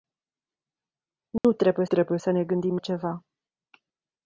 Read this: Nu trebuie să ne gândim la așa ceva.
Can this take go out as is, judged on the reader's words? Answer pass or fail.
fail